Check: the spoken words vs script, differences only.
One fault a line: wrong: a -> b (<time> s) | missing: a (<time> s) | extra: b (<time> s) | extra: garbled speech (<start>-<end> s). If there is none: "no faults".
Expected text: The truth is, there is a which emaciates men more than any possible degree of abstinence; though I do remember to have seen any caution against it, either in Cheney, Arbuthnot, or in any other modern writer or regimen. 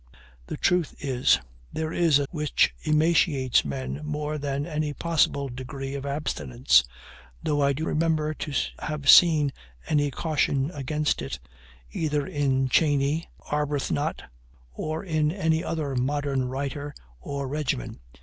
no faults